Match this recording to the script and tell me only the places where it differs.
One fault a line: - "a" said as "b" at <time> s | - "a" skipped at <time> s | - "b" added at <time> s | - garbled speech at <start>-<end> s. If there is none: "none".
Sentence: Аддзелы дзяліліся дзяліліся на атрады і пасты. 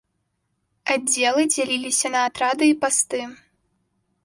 - "дзяліліся" skipped at 2.1 s